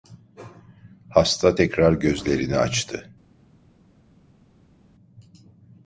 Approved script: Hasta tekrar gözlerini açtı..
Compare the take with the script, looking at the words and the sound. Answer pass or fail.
pass